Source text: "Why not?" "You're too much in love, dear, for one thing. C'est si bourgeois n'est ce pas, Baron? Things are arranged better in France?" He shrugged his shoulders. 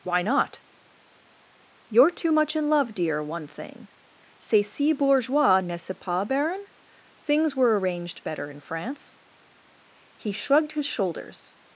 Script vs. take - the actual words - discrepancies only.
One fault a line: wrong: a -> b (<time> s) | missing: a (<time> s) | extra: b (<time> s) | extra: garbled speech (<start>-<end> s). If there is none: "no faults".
missing: for (3.2 s)
wrong: are -> were (7.5 s)